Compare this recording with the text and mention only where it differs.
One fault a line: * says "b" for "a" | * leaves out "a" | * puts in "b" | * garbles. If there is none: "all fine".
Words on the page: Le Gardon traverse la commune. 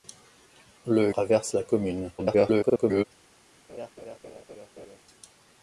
* leaves out "Gardon"
* garbles